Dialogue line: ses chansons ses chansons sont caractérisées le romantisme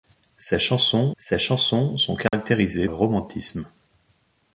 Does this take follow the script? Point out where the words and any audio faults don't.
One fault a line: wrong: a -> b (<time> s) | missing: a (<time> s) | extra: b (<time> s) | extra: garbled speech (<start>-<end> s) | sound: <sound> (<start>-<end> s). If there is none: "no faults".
sound: dropout (2.3-2.3 s)